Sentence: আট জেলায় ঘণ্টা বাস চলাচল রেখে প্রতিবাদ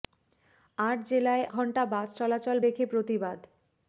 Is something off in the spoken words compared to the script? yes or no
no